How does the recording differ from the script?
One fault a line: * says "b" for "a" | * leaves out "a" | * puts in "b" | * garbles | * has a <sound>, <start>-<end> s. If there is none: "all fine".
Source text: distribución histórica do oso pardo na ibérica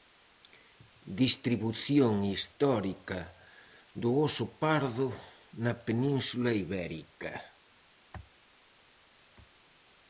* puts in "península"